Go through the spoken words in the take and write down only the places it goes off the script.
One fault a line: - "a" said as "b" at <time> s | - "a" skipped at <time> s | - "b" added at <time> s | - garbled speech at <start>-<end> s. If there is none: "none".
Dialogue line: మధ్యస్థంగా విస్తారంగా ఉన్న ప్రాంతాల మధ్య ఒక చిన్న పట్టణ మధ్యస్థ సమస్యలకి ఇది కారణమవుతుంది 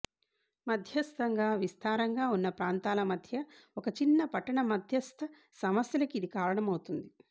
none